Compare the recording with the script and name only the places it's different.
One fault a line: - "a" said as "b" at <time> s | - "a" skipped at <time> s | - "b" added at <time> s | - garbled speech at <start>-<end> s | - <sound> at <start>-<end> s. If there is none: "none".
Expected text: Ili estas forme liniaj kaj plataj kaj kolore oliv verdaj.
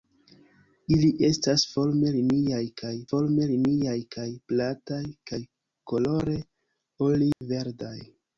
- "forme liniaj kaj" added at 3.1 s
- dropout at 7.3-7.4 s